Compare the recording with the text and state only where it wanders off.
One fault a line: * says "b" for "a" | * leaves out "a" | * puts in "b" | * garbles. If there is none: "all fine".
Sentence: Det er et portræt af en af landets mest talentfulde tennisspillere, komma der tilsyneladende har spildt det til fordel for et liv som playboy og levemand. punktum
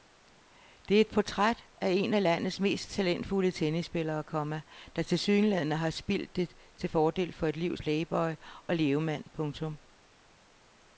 * leaves out "som"